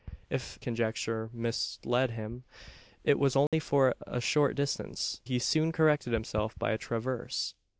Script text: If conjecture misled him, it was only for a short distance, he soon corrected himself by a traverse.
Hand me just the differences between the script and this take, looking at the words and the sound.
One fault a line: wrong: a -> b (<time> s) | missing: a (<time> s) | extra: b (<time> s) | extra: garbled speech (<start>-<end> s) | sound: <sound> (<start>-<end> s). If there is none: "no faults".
sound: dropout (3.5-3.5 s)